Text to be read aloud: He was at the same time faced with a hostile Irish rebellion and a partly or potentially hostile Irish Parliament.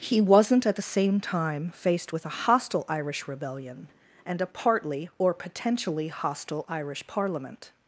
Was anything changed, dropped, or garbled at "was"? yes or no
yes